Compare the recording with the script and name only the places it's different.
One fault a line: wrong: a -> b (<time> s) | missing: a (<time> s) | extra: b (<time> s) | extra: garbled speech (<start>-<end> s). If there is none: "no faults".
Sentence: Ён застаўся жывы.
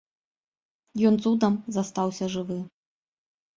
extra: цудам (1.3 s)